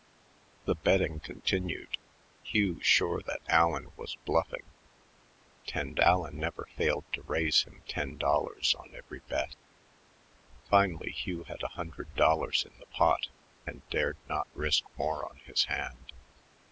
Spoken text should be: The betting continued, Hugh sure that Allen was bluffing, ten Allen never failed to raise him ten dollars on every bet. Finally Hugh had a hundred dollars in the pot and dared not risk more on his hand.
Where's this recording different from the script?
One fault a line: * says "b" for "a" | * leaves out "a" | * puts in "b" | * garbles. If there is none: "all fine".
all fine